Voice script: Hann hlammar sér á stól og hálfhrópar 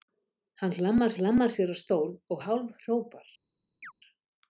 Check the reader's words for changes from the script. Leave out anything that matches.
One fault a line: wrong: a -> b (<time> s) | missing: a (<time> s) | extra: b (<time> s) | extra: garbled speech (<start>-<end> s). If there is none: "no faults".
extra: hlammar (1.2 s)